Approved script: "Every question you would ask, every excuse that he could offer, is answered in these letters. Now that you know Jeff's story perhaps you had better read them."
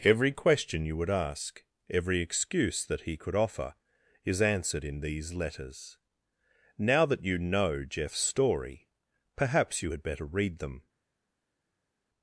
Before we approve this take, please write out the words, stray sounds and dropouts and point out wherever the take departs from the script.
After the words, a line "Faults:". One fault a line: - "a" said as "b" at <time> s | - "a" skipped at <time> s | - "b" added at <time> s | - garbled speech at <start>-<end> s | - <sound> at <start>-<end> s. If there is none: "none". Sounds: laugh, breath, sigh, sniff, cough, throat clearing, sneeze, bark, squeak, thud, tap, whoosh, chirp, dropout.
"Every question you would ask, every excuse that he could offer, is answered in these letters. Now that you know Jeff's story perhaps you had better read them."
Faults:
none